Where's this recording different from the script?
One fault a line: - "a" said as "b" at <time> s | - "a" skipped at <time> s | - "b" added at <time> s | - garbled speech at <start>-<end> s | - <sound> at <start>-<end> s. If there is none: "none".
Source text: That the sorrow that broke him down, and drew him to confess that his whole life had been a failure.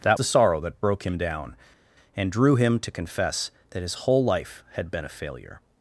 none